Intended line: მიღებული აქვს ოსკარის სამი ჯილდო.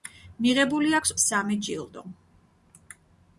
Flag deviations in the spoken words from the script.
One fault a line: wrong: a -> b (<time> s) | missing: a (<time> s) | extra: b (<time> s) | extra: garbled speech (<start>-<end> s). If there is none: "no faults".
missing: ოსკარის (1.1 s)